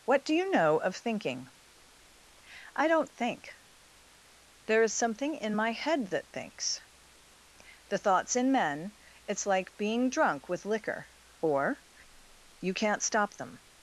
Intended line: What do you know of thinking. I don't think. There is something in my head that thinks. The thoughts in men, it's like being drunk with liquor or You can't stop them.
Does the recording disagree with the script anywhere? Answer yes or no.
no